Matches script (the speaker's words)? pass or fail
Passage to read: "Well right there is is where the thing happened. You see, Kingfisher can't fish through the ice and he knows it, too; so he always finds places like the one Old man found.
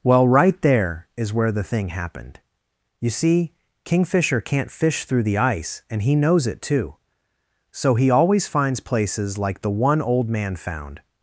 fail